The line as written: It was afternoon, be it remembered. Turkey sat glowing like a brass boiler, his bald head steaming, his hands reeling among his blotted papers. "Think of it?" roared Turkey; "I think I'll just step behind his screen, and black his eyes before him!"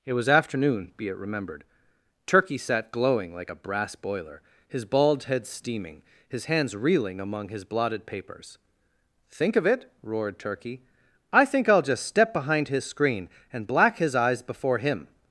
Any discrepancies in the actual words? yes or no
no